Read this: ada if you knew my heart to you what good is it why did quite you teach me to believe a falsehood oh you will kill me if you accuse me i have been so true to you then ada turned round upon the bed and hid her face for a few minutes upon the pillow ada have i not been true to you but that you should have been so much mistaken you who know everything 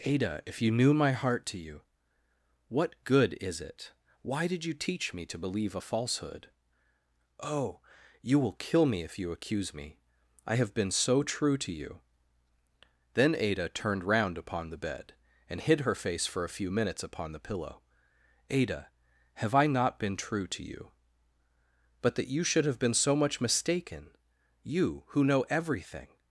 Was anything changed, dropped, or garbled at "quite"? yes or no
yes